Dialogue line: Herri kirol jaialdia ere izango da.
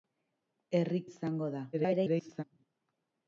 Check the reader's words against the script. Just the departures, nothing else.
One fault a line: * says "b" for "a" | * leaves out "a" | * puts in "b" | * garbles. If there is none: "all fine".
* leaves out "kirol jaialdia ere"
* garbles